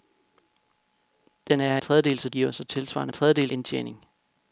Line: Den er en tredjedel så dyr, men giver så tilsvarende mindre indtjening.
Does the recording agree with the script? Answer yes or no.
no